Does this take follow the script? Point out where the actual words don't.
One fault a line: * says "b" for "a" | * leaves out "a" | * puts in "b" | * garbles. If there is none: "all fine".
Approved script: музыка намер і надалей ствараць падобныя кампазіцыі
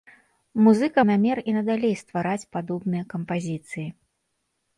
all fine